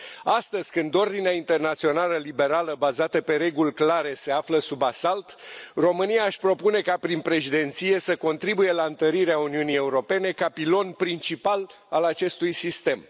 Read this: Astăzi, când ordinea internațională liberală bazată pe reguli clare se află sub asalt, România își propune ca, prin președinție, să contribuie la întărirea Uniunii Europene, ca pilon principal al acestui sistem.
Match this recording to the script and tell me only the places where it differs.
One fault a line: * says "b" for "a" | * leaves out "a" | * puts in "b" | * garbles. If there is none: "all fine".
all fine